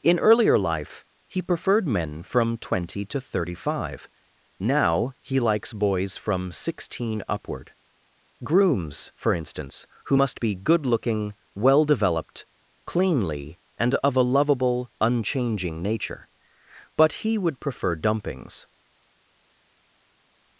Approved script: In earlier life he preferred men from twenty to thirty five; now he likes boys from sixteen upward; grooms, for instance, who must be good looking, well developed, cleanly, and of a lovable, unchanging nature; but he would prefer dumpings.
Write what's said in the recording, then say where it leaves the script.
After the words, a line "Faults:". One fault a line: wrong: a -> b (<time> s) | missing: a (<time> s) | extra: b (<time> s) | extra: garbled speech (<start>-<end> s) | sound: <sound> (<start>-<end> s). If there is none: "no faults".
In earlier life he preferred men from twenty to thirty five; now he likes boys from sixteen upward; grooms, for instance, who must be good looking, well developed, cleanly, and of a lovable, unchanging nature; but he would prefer dumpings.
Faults:
no faults